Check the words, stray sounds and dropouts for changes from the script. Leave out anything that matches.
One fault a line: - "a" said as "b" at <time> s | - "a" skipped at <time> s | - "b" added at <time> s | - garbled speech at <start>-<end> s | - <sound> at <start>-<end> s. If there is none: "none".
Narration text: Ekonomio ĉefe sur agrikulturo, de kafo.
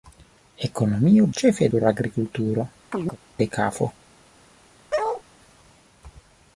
- chirp at 2.9-3.2 s
- bark at 4.9-5.2 s